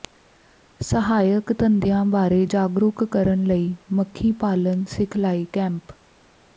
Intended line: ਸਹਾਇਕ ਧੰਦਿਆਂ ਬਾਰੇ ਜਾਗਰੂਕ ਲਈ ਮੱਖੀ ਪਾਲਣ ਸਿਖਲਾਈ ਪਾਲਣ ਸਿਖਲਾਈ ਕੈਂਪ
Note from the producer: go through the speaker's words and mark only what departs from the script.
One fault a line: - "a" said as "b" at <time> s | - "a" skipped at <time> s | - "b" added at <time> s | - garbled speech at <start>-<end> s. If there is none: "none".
- "ਕਰਨ" added at 3.1 s
- "ਪਾਲਣ ਸਿਖਲਾਈ" skipped at 5.4 s